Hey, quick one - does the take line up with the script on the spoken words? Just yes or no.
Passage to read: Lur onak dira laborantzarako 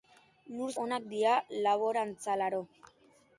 yes